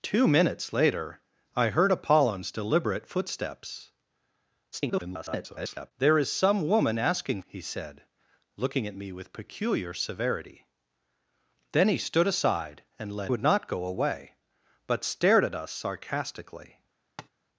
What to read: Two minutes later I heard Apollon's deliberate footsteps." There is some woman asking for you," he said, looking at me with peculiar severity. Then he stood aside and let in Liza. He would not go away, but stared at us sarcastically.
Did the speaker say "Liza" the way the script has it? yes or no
no